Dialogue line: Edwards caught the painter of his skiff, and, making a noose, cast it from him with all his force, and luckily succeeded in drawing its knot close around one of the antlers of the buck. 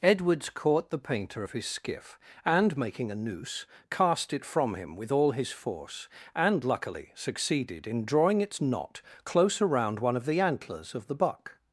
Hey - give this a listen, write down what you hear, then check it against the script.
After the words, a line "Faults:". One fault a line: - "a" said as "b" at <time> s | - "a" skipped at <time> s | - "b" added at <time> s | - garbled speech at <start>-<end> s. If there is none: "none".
Edwards caught the painter of his skiff, and, making a noose, cast it from him with all his force, and luckily succeeded in drawing its knot close around one of the antlers of the buck.
Faults:
none